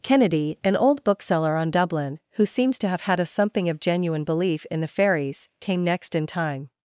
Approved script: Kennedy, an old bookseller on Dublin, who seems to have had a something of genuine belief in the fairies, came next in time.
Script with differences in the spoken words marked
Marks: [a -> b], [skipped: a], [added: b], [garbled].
Kennedy, an old bookseller on Dublin, who seems to have had a something of genuine belief in the fairies, came next in time.